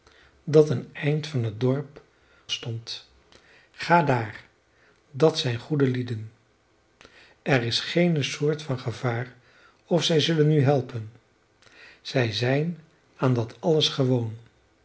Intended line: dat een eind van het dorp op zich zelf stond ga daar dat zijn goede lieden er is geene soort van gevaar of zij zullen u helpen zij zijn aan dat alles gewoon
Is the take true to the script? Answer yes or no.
no